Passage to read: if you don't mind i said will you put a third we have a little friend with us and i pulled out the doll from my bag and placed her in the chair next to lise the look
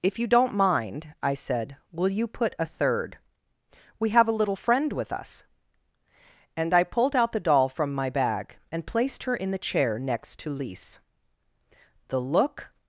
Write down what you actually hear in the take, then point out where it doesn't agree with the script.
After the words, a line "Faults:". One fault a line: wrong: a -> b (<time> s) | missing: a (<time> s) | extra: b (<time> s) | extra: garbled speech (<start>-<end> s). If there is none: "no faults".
if you don't mind i said will you put a third we have a little friend with us and i pulled out the doll from my bag and placed her in the chair next to lise the look
Faults:
no faults